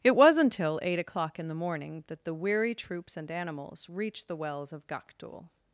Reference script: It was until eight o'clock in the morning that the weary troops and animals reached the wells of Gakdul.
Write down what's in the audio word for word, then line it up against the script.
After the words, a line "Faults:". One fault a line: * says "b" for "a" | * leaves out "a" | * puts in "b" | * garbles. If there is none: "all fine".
It was until eight o'clock in the morning that the weary troops and animals reached the wells of Gakdul.
Faults:
all fine